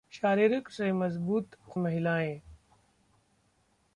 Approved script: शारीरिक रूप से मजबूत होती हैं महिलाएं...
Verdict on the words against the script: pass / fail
fail